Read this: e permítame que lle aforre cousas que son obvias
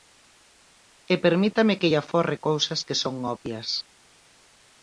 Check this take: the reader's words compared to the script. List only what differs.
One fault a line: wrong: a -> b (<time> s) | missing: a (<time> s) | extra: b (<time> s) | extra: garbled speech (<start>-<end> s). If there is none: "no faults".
no faults